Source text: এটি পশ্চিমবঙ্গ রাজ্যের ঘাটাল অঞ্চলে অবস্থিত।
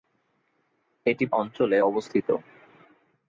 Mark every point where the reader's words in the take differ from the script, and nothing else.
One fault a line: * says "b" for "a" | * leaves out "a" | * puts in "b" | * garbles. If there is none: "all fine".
* leaves out "পশ্চিমবঙ্গ রাজ্যের ঘাটাল"